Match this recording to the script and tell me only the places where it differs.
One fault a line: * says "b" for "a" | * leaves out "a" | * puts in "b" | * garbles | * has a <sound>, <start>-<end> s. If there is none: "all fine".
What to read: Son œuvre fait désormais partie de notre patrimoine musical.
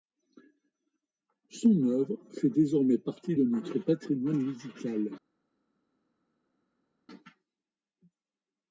all fine